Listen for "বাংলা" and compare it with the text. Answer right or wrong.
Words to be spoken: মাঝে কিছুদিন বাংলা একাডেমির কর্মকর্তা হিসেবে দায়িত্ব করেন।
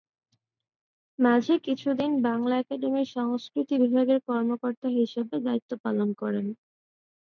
right